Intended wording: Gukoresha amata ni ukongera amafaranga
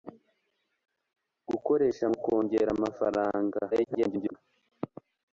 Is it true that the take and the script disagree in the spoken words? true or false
true